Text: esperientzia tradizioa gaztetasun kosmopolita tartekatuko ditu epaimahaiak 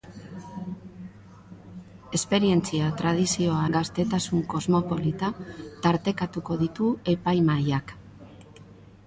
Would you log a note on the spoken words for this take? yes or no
no